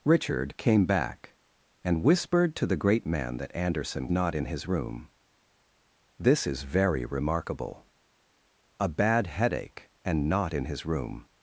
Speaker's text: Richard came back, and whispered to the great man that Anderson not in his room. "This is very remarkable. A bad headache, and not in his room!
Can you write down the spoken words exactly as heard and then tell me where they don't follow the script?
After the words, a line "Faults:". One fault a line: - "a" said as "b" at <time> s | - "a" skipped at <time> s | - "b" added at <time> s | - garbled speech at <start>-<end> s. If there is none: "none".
Richard came back, and whispered to the great man that Anderson not in his room. "This is very remarkable. A bad headache, and not in his room!
Faults:
none